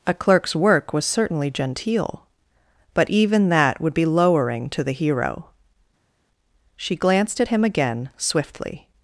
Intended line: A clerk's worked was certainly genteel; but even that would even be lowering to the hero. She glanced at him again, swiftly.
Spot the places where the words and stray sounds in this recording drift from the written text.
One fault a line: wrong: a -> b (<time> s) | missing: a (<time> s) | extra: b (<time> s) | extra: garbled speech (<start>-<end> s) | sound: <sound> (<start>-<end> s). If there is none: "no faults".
wrong: worked -> work (0.6 s)
missing: even (3.9 s)